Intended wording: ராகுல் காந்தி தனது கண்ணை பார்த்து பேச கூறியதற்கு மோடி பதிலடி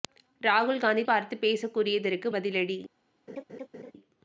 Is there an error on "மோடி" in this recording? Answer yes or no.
yes